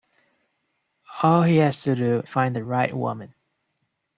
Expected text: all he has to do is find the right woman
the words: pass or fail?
fail